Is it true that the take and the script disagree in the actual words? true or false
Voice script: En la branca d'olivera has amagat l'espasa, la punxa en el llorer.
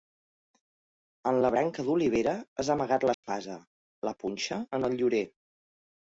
false